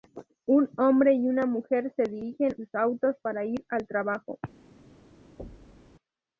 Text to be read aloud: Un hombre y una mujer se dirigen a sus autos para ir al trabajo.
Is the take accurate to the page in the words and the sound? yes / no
no